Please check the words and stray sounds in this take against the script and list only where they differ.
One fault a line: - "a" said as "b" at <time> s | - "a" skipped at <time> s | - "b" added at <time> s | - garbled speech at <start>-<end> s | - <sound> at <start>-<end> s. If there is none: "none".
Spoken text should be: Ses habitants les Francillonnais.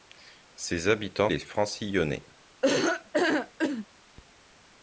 - laugh at 2.6-3.9 s